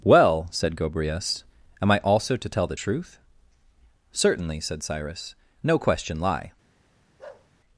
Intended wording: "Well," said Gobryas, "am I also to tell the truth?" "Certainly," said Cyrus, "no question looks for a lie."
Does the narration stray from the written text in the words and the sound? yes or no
yes